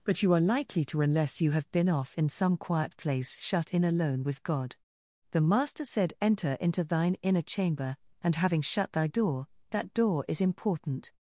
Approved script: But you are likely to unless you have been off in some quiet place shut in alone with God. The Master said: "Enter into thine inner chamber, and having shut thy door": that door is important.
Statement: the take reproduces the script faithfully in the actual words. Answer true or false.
true